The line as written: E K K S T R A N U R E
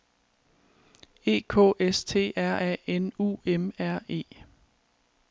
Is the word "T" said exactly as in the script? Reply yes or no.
yes